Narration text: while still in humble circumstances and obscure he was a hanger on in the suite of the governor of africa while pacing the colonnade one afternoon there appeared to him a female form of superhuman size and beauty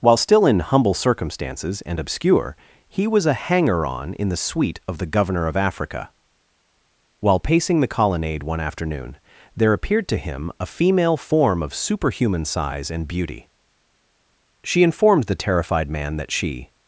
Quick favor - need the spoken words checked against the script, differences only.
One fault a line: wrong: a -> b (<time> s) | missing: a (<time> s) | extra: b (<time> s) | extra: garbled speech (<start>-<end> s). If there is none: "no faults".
extra: she informed the terrified man that she (14.6 s)